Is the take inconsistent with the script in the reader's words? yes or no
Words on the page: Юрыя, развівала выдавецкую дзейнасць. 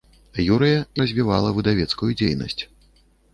no